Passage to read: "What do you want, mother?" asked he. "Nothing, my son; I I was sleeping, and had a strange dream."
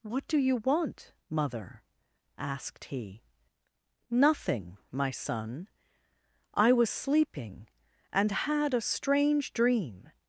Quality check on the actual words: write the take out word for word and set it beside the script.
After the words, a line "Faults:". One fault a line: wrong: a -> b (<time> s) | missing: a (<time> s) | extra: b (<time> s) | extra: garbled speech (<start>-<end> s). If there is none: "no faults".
"What do you want, mother?" asked he. "Nothing, my son; I was sleeping, and had a strange dream."
Faults:
missing: I (6.7 s)